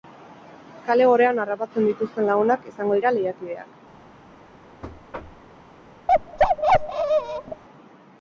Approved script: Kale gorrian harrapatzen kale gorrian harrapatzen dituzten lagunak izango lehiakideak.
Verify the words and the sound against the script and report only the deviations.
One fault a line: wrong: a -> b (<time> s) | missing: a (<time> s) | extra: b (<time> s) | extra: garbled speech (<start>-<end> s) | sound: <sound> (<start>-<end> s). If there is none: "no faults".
missing: kale gorrian harrapatzen (1.9 s)
extra: dira (3.0 s)
sound: thud (4.8-5.5 s)
sound: bark (6.1-7.6 s)